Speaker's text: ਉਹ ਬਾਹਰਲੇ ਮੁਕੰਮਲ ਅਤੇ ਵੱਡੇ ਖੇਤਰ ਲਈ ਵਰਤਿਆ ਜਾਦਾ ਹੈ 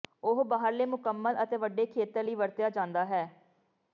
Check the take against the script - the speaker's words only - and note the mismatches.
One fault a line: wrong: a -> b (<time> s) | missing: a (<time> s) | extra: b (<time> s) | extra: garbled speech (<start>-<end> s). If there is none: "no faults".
no faults